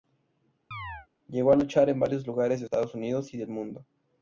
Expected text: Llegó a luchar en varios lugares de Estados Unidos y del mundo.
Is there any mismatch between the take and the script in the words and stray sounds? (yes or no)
yes